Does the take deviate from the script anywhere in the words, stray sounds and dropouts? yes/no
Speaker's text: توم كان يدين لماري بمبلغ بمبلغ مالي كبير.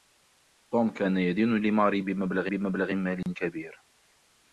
yes